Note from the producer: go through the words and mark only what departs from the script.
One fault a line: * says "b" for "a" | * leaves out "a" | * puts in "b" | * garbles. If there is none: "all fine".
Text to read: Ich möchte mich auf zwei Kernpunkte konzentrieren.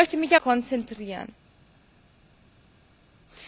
* leaves out "auf zwei Kernpunkte"